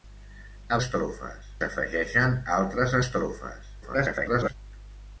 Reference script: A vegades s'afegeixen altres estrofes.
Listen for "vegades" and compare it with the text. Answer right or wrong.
wrong